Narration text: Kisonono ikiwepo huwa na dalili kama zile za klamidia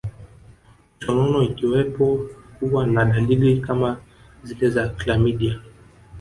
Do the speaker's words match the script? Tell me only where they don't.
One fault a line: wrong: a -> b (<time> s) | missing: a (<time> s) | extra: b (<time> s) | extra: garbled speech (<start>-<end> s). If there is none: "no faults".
no faults